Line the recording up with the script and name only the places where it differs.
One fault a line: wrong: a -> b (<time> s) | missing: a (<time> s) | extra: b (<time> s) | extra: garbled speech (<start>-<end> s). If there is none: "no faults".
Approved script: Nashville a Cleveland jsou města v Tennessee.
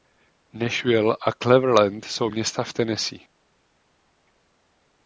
no faults